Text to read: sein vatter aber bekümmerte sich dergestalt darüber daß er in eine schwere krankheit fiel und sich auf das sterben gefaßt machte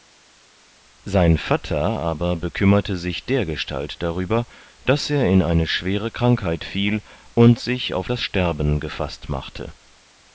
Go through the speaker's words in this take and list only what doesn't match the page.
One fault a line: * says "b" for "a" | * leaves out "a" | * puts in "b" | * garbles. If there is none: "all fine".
all fine